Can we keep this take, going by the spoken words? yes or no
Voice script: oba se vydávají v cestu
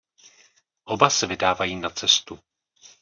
no